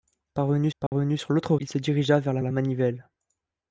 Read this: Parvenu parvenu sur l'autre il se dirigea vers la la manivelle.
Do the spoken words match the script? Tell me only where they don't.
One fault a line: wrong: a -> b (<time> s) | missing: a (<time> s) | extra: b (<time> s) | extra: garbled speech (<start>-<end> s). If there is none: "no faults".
no faults